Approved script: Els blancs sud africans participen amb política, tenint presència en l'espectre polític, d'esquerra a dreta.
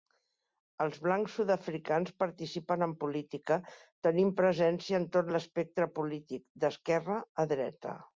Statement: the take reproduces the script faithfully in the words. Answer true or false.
false